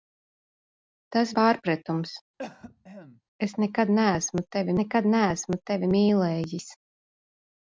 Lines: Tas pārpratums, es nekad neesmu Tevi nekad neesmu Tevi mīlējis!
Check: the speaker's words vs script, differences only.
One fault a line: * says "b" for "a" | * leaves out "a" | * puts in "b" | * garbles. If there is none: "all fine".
all fine